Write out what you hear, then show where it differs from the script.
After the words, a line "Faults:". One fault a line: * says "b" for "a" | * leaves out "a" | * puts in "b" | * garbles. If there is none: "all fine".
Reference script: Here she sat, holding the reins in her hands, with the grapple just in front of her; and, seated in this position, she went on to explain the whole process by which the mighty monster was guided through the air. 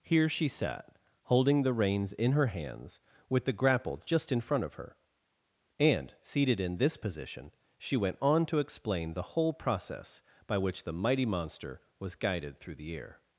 Here she sat, holding the reins in her hands, with the grapple just in front of her; and, seated in this position, she went on to explain the whole process by which the mighty monster was guided through the air.
Faults:
all fine